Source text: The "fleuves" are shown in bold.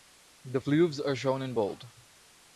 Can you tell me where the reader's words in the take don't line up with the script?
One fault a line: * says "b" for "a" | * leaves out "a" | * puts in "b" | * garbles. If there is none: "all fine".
all fine